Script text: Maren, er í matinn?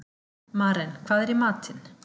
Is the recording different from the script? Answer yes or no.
yes